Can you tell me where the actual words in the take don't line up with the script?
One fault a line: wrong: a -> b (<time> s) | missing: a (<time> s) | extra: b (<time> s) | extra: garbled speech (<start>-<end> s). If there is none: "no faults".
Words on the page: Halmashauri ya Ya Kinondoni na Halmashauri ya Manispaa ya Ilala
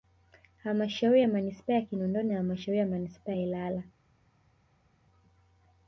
extra: Manispaa (1.3 s)